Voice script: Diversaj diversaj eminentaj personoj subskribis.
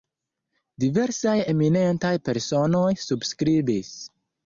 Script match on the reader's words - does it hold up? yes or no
no